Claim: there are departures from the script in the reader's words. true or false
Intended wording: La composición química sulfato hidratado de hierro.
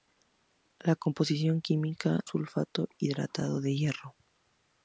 false